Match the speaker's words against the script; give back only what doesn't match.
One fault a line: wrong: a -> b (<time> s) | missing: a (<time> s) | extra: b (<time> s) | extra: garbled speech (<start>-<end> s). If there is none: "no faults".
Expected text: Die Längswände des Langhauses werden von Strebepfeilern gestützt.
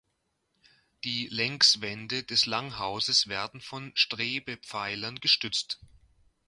no faults